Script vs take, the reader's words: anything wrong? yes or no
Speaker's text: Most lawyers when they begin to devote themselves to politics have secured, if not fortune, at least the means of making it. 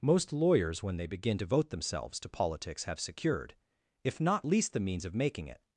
yes